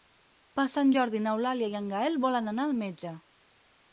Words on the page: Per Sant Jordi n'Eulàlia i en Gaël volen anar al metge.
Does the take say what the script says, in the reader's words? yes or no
yes